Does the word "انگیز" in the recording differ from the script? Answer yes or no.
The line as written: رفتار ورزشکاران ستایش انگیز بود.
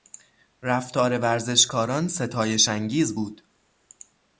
no